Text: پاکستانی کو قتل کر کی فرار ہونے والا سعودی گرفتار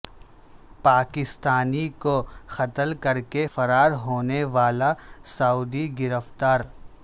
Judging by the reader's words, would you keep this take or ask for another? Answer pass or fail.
fail